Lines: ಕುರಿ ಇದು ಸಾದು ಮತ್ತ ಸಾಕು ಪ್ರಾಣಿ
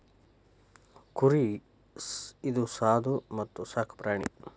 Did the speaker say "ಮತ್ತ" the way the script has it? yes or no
yes